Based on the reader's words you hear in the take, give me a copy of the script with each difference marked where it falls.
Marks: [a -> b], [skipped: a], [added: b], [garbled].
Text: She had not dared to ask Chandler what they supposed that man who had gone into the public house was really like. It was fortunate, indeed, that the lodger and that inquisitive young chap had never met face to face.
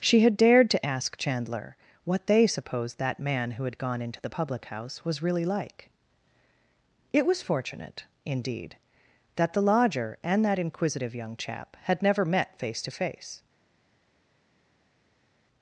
She had [skipped: not] dared to ask Chandler what they supposed that man who had gone into the public house was really like. It was fortunate, indeed, that the lodger and that inquisitive young chap had never met face to face.